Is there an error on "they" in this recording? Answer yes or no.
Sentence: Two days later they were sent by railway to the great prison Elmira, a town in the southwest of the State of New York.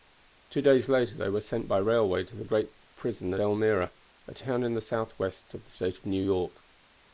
no